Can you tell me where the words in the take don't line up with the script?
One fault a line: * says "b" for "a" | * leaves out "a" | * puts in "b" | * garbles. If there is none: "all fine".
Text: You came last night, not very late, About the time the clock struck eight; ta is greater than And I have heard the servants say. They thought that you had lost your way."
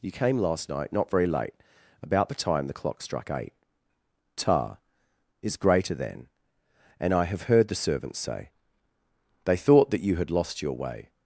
all fine